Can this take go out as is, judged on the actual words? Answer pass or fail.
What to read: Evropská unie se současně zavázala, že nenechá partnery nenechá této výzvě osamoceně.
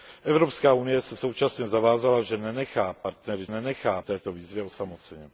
pass